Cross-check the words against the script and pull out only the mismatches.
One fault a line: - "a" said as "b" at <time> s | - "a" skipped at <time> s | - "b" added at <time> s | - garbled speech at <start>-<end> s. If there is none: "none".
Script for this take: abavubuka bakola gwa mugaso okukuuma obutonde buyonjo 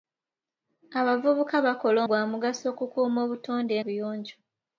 none